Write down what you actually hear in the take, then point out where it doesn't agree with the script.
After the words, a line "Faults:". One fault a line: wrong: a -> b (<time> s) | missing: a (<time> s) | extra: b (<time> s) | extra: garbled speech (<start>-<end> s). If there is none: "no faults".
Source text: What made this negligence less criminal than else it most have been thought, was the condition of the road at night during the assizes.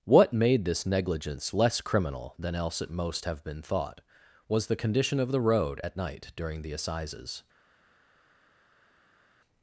What made this negligence less criminal than else it most have been thought, was the condition of the road at night during the assizes.
Faults:
no faults